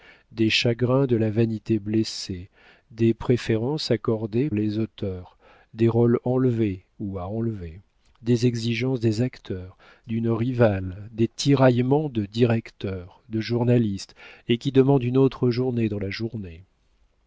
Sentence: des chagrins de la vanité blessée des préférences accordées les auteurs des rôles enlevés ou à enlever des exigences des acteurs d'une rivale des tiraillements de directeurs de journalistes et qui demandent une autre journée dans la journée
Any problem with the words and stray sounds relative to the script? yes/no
no